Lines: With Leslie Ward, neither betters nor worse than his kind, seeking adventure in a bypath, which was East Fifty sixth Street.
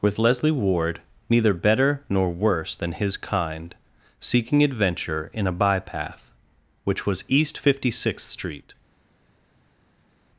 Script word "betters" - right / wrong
wrong